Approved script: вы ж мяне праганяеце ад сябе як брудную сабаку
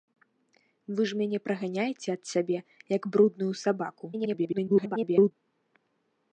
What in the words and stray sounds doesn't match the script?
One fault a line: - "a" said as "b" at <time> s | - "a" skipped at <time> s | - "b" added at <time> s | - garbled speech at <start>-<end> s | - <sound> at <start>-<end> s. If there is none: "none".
- garbled speech at 4.1-5.3 s